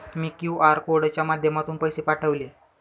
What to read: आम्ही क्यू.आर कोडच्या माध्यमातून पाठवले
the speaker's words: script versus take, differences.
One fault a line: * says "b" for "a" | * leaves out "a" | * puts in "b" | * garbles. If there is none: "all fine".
* says "मी" for "आम्ही"
* puts in "पैसे"